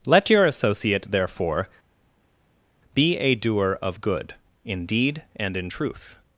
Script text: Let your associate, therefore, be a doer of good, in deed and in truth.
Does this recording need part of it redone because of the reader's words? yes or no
no